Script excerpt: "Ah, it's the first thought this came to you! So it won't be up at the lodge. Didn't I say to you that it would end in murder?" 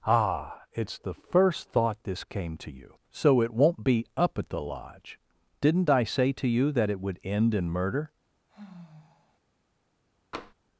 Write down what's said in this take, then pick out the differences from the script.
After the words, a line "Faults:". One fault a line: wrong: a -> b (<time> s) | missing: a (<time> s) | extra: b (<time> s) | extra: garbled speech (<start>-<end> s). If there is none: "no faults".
"Ah, it's the first thought this came to you! So it won't be up at the lodge. Didn't I say to you that it would end in murder?"
Faults:
no faults